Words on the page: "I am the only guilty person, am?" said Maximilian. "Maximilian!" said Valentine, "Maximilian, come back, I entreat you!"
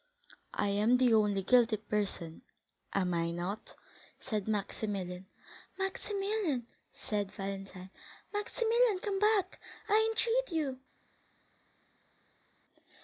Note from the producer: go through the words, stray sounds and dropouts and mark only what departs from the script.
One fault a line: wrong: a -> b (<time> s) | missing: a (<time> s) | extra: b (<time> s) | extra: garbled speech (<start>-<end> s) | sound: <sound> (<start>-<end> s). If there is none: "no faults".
extra: I not (3.1 s)